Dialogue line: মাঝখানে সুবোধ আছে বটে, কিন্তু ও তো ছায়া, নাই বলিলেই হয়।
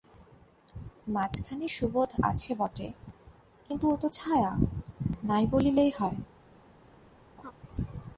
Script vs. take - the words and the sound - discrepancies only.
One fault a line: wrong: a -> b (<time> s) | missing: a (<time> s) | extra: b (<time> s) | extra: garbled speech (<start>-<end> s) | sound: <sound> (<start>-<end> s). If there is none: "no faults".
sound: laugh (7.4-7.5 s)